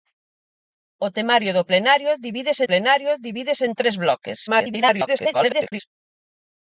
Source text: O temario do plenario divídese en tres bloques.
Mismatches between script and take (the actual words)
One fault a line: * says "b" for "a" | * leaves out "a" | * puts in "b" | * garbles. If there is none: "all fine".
* puts in "plenario divídese"
* garbles